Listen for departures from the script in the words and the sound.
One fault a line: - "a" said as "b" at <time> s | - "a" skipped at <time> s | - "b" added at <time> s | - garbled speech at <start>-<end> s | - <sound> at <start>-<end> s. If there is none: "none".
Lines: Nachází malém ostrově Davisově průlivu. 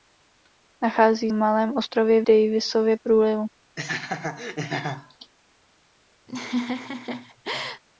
- laugh at 3.8-5.3 s
- laugh at 6.3-7.8 s